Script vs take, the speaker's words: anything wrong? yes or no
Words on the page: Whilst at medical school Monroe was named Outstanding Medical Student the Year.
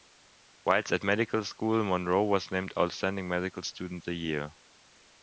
no